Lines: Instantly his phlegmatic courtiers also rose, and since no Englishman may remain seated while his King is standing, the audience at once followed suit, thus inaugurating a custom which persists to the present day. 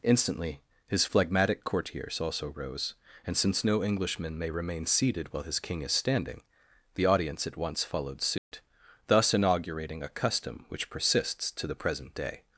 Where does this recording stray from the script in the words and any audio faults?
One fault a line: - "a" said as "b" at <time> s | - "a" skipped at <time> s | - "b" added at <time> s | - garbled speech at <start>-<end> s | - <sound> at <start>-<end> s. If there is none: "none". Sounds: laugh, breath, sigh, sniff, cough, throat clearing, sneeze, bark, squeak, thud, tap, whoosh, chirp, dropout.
- dropout at 8.4-8.5 s